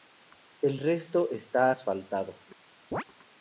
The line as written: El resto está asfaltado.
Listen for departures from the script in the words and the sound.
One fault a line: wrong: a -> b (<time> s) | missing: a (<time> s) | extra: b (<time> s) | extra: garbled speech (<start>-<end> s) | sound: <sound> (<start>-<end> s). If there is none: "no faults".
sound: chirp (2.9-3.0 s)